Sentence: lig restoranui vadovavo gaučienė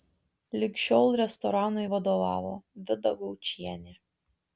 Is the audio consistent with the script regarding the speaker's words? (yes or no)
no